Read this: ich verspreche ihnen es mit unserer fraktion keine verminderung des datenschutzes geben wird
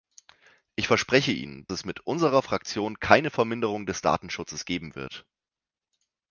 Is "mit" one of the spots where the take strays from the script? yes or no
no